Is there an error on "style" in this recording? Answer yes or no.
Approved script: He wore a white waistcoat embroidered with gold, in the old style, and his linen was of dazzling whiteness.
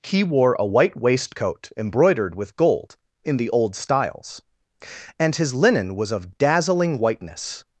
yes